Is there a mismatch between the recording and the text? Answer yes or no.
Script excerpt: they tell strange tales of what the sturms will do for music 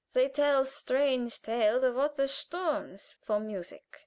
yes